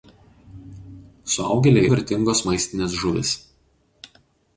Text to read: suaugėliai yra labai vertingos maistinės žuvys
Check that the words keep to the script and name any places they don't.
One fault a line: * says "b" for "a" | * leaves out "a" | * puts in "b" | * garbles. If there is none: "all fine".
* leaves out "yra labai"